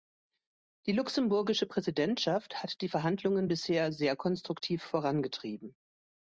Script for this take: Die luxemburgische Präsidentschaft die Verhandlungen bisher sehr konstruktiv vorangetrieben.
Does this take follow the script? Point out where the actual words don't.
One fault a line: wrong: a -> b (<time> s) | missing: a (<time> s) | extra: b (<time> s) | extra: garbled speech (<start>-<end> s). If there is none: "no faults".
extra: hat (2.6 s)